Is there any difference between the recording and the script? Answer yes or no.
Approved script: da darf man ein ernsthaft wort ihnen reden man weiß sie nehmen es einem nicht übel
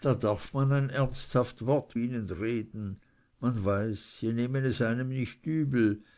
no